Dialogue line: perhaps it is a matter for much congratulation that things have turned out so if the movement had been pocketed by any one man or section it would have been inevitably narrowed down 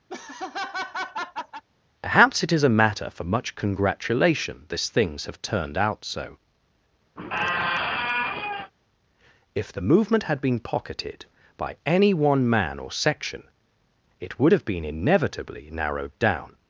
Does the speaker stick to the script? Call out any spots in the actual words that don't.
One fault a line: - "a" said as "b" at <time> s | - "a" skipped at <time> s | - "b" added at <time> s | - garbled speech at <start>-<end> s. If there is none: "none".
- "that" said as "this" at 4.7 s